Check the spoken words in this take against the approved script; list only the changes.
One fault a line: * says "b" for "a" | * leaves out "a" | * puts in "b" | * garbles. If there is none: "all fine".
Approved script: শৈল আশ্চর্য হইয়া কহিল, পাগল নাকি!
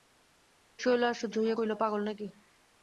all fine